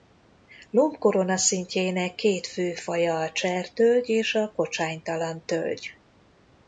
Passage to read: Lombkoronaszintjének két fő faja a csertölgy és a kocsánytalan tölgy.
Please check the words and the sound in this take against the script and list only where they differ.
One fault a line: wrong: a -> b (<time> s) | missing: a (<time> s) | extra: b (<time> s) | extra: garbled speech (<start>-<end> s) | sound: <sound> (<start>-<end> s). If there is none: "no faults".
no faults